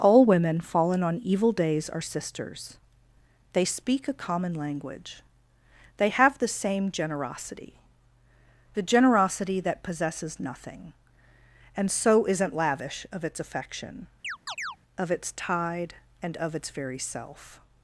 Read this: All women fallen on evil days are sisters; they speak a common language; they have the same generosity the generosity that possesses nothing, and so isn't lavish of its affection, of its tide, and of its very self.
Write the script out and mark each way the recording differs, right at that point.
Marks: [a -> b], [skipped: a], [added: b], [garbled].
All women fallen on evil days are sisters; they speak a common language; they have the same generosity the generosity that possesses nothing, and so isn't lavish of its affection, of its tide, and of its very self.